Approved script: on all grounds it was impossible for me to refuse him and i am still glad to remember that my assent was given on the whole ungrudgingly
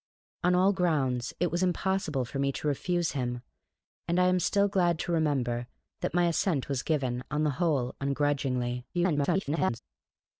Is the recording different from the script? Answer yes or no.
yes